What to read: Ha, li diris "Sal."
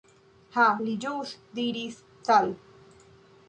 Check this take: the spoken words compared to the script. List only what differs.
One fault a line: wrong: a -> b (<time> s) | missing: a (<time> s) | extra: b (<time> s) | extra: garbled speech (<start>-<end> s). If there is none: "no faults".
extra: ĵus (1.1 s)